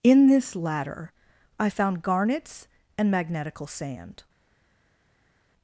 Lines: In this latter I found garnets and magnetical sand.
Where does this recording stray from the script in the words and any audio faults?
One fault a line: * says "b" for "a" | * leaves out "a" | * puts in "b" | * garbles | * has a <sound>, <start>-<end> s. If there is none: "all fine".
all fine